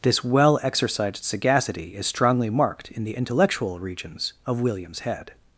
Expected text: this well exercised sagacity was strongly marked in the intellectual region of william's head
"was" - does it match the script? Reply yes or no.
no